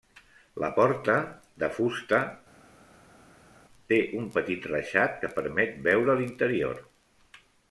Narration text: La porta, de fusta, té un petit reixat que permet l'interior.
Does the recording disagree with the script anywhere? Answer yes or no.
yes